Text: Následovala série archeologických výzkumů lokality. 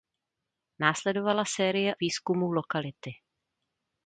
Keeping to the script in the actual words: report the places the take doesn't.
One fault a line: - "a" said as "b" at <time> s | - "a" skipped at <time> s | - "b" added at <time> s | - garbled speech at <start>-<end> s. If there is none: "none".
- "archeologických" skipped at 1.9 s